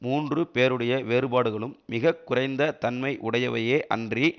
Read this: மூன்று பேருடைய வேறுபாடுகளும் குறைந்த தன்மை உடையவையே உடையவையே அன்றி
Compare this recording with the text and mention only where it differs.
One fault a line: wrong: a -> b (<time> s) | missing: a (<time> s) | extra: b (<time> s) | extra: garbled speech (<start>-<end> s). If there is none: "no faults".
extra: மிக (1.9 s)
missing: உடையவையே (3.8 s)